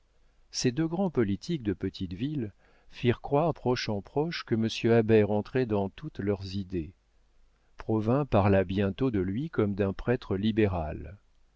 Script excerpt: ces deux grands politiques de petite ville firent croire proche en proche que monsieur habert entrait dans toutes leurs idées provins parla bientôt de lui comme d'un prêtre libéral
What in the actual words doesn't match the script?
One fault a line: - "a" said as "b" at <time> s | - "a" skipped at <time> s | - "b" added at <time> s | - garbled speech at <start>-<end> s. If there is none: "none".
none